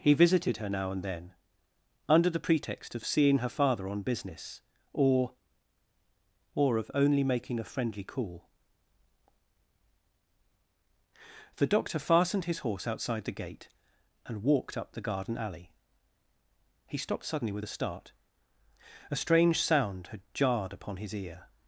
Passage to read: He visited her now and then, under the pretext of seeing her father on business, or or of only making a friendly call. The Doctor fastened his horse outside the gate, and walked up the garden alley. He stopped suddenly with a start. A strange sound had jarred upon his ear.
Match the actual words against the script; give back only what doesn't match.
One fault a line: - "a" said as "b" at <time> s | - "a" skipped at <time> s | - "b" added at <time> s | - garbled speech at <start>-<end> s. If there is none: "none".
none